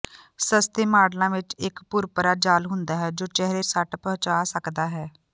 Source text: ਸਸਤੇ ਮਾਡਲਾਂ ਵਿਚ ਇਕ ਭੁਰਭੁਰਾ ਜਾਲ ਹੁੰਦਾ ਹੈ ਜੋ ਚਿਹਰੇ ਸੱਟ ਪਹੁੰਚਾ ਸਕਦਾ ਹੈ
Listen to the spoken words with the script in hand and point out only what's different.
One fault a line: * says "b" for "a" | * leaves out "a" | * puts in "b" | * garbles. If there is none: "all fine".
all fine